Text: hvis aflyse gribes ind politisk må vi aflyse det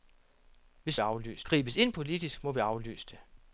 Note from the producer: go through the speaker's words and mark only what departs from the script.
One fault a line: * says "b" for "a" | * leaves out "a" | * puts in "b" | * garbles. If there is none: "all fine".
all fine